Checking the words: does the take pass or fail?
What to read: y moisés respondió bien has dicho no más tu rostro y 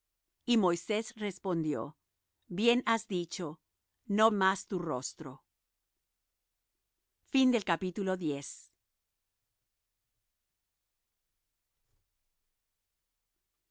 pass